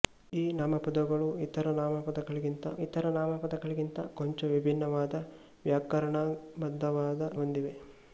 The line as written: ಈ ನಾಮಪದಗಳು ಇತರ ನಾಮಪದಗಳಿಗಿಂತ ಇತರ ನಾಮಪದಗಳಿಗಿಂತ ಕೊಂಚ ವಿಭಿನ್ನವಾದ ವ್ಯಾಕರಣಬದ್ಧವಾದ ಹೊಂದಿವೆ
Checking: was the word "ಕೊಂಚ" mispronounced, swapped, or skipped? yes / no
no